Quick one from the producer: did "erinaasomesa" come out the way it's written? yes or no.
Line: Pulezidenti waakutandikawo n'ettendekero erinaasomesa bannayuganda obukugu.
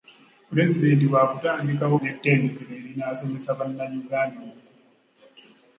yes